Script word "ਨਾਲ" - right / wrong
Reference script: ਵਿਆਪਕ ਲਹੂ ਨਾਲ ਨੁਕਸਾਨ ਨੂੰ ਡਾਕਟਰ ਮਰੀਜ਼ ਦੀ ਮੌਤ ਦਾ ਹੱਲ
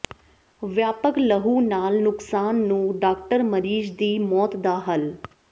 right